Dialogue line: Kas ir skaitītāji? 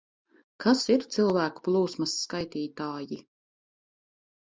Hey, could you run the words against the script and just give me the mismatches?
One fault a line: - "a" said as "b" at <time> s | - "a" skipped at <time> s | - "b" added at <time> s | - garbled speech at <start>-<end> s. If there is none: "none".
- "cilvēku plūsmas" added at 1.2 s